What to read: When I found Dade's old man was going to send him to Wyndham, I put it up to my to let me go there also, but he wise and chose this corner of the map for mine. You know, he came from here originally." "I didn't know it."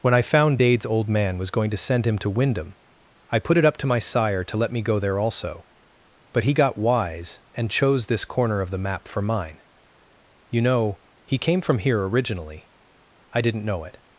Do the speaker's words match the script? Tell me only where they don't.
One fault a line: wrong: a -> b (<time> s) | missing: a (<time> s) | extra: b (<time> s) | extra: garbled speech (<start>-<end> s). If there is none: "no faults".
extra: sire (4.0 s)
extra: got (6.5 s)